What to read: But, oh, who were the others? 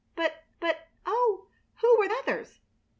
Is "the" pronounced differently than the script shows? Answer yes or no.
yes